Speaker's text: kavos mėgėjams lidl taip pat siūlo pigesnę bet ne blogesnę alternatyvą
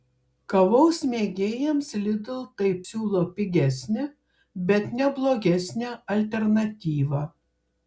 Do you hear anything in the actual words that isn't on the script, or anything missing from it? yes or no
yes